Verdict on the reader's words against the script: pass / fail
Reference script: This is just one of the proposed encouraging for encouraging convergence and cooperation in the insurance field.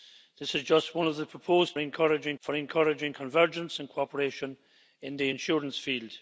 pass